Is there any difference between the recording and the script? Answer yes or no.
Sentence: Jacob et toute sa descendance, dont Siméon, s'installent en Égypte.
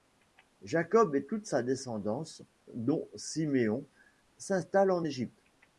no